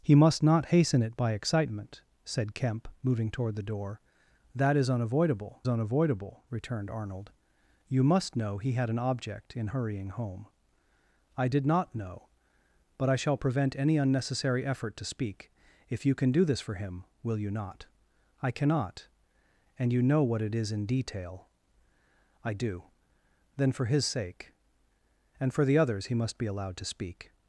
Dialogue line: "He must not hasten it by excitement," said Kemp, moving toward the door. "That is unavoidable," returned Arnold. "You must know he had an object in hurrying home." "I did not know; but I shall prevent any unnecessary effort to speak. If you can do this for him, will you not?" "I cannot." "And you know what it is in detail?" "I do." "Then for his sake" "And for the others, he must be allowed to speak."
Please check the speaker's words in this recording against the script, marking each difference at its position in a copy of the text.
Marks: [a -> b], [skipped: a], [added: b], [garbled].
"He must not hasten it by excitement," said Kemp, moving toward the door. "That is unavoidable," [added: unavoidable] returned Arnold. "You must know he had an object in hurrying home." "I did not know; but I shall prevent any unnecessary effort to speak. If you can do this for him, will you not?" "I cannot." "And you know what it is in detail?" "I do." "Then for his sake" "And for the others, he must be allowed to speak."